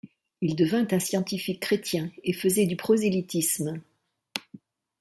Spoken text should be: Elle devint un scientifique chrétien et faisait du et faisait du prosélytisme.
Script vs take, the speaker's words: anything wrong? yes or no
yes